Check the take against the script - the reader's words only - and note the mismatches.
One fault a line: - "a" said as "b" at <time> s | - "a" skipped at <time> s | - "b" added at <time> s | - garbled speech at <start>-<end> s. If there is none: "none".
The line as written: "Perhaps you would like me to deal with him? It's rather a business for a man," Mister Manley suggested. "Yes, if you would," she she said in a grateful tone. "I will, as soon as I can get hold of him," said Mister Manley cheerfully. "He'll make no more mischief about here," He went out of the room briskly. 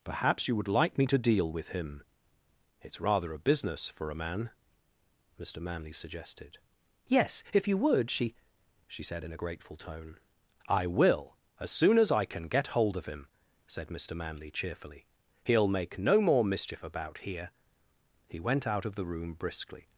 none